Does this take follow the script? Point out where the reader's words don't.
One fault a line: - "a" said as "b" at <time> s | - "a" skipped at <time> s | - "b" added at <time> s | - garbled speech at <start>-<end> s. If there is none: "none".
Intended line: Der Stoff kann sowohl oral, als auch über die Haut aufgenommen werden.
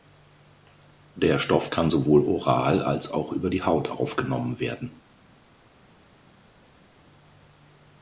none